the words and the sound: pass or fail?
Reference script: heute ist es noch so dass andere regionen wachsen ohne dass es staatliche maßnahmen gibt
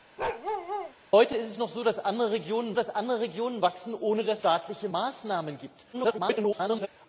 fail